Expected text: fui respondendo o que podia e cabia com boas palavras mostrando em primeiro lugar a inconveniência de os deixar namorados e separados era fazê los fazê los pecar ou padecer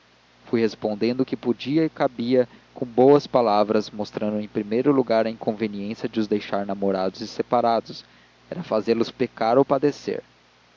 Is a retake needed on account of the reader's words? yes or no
yes